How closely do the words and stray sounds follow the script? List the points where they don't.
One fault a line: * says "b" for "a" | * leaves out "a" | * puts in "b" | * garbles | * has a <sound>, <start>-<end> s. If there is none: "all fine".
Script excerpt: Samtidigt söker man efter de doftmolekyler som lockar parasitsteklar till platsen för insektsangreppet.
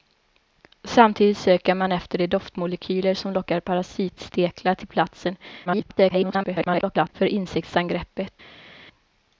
* garbles